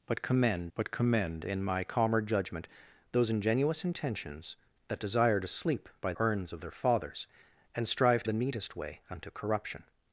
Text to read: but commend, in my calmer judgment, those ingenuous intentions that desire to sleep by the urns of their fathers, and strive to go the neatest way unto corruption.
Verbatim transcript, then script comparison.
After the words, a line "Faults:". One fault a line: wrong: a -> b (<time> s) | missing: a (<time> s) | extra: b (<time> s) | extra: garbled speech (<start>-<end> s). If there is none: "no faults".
but commend but commend, in my calmer judgment, those ingenuous intentions that desire to sleep by urns of their fathers, and strive to the neatest way unto corruption.
Faults:
extra: but commend (0.8 s)
missing: the (6.1 s)
missing: go (8.3 s)